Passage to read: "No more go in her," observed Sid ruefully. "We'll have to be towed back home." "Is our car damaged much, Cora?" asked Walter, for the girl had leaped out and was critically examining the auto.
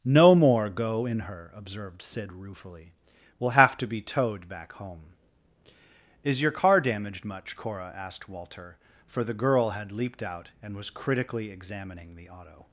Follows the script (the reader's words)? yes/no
no